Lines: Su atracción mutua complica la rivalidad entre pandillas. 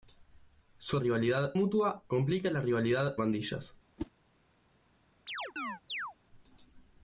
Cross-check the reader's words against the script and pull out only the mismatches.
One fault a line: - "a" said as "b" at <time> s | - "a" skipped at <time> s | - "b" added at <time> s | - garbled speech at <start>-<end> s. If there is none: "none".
- "atracción" said as "rivalidad" at 1.0 s
- "entre" skipped at 3.1 s